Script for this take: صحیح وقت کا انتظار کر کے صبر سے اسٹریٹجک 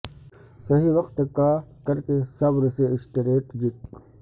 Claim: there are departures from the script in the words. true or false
true